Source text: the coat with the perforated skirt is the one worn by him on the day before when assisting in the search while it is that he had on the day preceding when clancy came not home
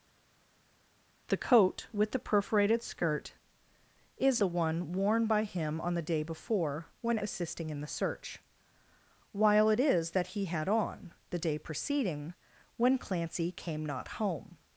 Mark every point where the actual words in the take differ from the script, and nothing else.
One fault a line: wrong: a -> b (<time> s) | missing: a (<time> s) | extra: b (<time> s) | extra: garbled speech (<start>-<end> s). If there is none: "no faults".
no faults